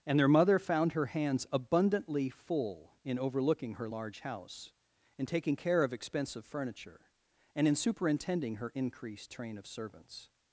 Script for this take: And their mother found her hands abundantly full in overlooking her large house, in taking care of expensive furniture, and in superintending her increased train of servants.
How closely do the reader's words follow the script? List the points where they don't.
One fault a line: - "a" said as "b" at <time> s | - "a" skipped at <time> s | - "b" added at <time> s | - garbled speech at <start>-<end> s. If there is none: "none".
none